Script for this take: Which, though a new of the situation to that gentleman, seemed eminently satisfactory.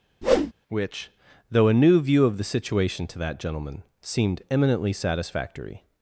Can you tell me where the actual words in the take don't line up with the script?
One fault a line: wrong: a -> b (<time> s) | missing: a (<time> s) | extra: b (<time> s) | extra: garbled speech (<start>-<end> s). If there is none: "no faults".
extra: view (2.0 s)